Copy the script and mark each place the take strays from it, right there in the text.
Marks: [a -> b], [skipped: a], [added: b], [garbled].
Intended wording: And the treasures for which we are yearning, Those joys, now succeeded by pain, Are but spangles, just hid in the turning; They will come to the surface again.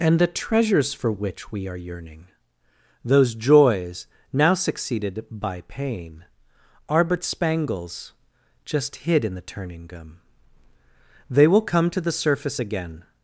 And the treasures for which we are yearning, Those joys, now succeeded by pain, Are but spangles, just hid in the turning; [added: gum] They will come to the surface again.